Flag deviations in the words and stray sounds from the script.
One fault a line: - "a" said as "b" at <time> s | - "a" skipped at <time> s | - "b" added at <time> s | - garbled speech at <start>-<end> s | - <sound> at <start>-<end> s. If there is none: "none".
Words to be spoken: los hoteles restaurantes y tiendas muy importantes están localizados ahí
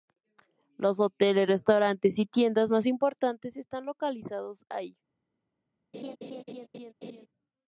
- "muy" said as "más" at 2.7 s
- laugh at 5.9-7.3 s